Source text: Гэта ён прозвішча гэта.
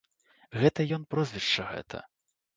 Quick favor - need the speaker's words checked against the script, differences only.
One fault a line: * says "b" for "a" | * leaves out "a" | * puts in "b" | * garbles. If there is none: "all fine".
all fine